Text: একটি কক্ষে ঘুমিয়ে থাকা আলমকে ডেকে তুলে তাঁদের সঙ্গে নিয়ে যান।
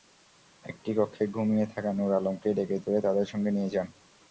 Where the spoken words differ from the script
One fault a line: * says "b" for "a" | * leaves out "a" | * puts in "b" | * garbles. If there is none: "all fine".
* puts in "নূর"